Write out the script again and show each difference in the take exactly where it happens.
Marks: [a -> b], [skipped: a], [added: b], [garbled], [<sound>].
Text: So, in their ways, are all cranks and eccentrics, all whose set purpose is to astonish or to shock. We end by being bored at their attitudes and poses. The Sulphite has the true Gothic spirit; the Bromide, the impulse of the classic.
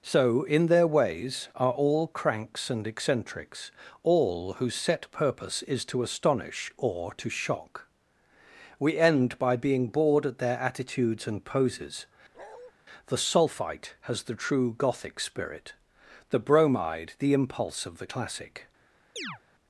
So, in their ways, are all cranks and eccentrics, all whose set purpose is to astonish or to shock. We end by being bored at their attitudes and poses. [bark] The Sulphite has the true Gothic spirit; the Bromide, the impulse of the classic. [chirp]